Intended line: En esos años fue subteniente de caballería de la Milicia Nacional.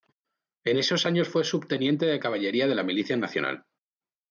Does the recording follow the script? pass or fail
pass